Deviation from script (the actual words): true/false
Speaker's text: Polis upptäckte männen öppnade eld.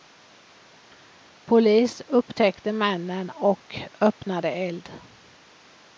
true